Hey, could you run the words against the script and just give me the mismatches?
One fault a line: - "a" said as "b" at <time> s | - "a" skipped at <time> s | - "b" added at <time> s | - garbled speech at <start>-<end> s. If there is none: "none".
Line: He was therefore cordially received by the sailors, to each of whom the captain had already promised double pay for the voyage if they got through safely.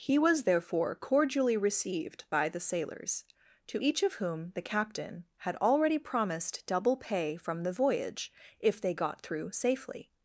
- "for" said as "from" at 7.4 s